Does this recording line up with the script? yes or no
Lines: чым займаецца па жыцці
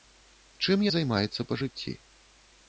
yes